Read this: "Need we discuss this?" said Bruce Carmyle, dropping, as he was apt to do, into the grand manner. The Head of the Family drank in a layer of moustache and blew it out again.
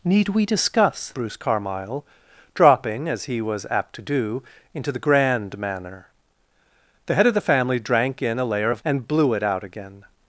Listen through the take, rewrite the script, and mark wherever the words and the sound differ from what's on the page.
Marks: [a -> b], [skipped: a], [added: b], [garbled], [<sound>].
"Need we discuss [skipped: this?" said] Bruce Carmyle, dropping, as he was apt to do, into the grand manner. The Head of the Family drank in a layer of [skipped: moustache] and blew it out again.